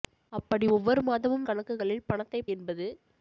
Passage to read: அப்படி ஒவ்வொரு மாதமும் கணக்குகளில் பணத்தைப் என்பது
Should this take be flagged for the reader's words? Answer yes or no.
no